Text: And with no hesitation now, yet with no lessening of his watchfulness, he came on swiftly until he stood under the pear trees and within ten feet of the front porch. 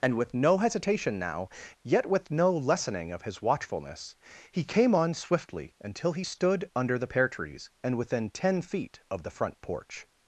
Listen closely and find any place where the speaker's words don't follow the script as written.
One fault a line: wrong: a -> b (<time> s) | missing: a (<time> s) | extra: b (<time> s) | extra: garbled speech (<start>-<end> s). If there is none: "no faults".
no faults